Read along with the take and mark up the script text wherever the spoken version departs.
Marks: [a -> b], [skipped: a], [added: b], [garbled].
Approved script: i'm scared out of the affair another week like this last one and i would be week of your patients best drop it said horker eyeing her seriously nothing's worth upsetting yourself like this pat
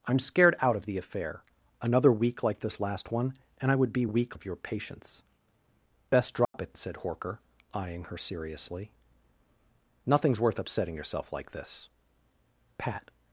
i'm scared out of the affair another week like this last one and i would be week of your patients best drop it said horker eyeing her seriously nothing's worth upsetting yourself like this pat